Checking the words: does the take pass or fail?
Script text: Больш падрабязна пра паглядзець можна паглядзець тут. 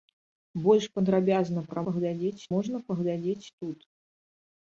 pass